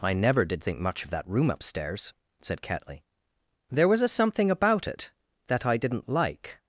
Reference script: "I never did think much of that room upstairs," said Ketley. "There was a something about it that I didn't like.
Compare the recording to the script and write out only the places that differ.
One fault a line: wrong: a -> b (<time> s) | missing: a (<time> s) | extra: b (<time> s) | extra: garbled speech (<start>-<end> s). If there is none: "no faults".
no faults